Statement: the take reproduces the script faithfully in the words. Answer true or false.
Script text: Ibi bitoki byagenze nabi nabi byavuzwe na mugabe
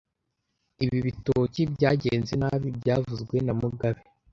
false